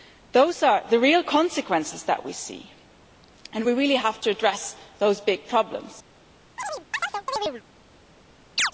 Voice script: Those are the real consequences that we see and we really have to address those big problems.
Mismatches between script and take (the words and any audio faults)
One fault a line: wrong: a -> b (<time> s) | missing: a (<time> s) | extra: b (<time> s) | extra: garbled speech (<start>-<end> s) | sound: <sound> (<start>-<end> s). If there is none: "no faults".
sound: chirp (6.6-7.6 s)
sound: chirp (8.6-8.7 s)